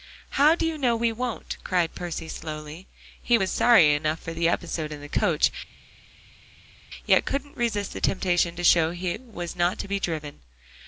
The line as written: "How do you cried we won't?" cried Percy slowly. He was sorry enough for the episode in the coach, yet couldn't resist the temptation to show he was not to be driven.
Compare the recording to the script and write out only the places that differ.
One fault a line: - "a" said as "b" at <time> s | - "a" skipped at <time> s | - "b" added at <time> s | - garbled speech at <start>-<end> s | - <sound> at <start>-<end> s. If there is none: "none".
- "cried" said as "know" at 0.8 s